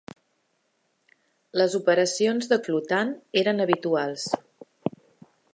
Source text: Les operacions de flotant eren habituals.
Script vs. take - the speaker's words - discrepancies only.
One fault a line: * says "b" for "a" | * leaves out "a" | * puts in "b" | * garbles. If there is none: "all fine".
all fine